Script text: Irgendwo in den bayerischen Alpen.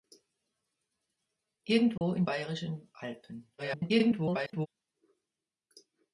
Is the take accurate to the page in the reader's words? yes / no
no